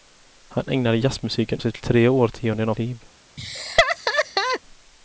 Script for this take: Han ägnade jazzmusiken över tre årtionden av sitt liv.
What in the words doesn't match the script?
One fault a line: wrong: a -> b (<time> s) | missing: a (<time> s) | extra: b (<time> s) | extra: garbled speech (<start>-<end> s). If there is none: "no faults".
wrong: över -> sitt (1.6 s)
missing: sitt (2.7 s)